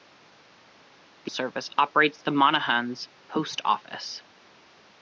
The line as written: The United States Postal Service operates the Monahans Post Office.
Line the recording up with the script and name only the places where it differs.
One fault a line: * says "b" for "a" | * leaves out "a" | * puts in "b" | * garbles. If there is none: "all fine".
* leaves out "United States Postal"